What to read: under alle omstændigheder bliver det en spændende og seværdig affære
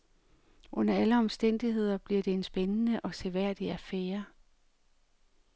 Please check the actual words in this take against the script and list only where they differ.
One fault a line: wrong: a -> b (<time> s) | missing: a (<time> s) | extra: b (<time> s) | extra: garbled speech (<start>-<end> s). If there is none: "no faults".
no faults